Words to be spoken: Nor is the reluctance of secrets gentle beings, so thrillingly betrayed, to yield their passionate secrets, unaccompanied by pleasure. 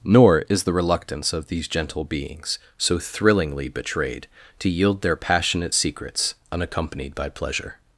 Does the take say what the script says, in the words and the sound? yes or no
no